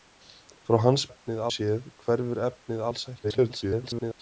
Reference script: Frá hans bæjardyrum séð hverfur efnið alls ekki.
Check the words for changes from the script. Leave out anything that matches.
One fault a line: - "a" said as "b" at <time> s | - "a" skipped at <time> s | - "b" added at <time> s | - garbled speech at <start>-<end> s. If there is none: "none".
- "bæjardyrum" said as "efnið" at 1.1 s
- garbled speech at 3.2-4.2 s